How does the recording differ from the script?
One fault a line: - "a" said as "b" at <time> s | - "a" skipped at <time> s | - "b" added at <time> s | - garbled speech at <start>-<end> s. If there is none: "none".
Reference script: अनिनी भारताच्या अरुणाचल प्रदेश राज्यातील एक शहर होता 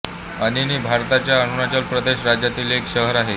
- "होता" said as "आहे" at 3.1 s